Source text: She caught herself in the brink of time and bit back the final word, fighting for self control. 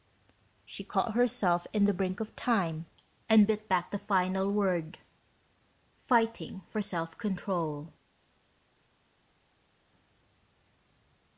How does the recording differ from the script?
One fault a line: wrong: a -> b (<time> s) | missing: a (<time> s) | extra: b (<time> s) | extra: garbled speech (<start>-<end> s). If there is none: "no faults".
no faults